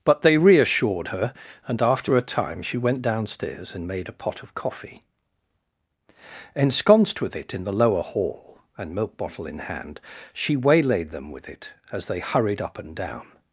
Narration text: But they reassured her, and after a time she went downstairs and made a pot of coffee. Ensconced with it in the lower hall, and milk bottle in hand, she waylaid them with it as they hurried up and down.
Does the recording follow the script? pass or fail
pass